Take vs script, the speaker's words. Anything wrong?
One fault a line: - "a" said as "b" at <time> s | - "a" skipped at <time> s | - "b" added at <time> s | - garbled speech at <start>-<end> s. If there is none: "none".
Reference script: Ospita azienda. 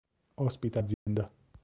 none